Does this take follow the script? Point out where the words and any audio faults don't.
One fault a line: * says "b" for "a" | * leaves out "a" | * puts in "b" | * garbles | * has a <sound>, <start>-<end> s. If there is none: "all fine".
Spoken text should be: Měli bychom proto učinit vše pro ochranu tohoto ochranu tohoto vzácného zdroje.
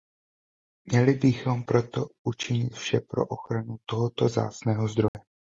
* leaves out "ochranu tohoto"
* has a dropout, 5.1-5.1 s